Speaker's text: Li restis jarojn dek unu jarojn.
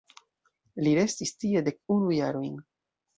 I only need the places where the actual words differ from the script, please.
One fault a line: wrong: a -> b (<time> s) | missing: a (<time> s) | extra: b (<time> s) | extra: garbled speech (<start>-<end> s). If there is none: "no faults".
wrong: jarojn -> tie (1.4 s)